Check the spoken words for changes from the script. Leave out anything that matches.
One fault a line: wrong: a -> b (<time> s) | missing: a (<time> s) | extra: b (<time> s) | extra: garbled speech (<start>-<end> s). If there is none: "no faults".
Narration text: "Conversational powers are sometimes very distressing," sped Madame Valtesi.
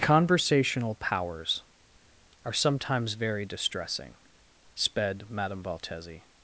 no faults